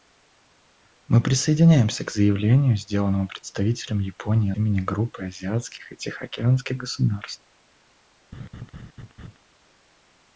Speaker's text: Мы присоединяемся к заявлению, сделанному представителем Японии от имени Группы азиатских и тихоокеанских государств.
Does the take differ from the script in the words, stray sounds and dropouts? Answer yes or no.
yes